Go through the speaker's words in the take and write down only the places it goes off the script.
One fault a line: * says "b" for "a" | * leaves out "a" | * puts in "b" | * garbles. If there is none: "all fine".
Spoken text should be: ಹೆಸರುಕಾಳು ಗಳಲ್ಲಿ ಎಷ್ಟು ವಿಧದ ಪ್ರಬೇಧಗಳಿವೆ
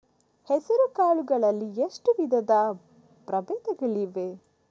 all fine